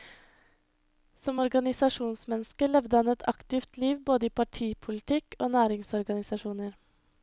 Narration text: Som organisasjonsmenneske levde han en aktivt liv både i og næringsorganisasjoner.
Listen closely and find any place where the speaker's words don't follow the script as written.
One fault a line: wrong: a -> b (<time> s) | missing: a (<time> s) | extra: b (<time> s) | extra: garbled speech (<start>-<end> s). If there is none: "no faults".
wrong: en -> et (3.1 s)
extra: partipolitikk (4.4 s)